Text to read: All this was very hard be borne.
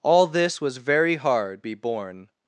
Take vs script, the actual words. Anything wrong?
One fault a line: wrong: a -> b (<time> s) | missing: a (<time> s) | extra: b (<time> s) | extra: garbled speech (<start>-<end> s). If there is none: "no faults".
no faults